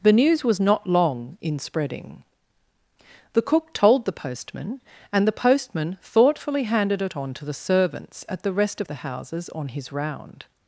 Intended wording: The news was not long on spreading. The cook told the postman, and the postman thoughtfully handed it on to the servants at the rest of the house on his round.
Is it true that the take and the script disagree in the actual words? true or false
true